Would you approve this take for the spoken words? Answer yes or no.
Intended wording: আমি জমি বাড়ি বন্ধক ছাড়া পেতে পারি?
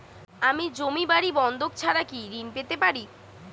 no